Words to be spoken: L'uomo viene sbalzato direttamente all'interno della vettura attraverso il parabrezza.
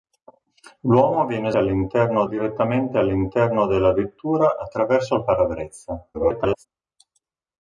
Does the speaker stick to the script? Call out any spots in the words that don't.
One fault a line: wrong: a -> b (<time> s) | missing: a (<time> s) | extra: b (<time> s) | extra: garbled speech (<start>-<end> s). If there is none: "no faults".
wrong: sbalzato -> all'interno (1.6 s)
extra: garbled speech (6.1-6.7 s)